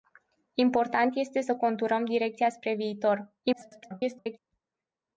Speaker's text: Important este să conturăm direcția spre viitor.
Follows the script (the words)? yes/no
no